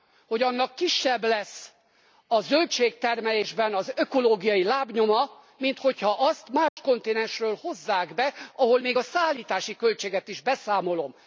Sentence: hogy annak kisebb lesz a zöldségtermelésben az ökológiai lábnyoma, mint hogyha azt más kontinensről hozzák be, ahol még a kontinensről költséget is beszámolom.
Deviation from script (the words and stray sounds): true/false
true